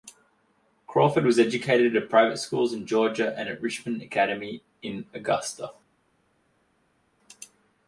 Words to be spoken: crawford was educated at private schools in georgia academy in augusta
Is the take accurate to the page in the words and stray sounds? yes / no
no